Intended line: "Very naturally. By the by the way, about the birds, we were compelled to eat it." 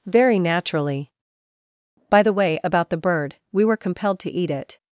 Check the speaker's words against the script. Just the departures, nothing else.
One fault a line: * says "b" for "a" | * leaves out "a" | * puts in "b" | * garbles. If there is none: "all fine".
* leaves out "by the"
* says "bird" for "birds"